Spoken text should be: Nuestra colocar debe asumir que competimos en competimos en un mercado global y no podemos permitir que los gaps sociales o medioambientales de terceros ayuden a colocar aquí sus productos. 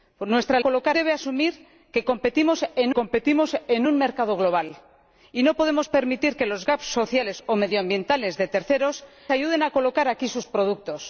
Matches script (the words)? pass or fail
pass